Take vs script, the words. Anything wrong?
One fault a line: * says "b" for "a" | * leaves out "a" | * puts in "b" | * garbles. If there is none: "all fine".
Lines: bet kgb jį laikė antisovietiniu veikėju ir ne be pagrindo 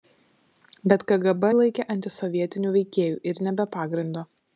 * leaves out "jį"